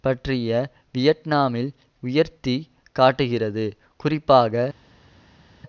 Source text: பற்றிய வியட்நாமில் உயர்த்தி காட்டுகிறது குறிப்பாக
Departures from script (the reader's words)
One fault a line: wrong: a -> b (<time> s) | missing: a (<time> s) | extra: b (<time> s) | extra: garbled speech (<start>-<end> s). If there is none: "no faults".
no faults